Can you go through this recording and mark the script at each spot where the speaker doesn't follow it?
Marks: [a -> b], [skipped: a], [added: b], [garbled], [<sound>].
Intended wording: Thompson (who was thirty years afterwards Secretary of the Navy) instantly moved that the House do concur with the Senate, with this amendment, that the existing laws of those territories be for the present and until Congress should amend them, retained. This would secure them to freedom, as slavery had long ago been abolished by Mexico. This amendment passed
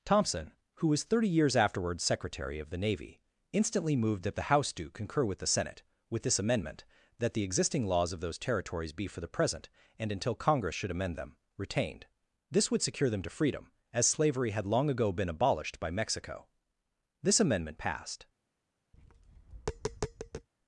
Thompson (who was thirty years afterwards Secretary of the Navy) instantly moved that the House do concur with the Senate, with this amendment, that the existing laws of those territories be for the present and until Congress should amend them, retained. This would secure them to freedom, as slavery had long ago been abolished by Mexico. This amendment passed [tap]